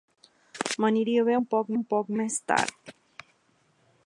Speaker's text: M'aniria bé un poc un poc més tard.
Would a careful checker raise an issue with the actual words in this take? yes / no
no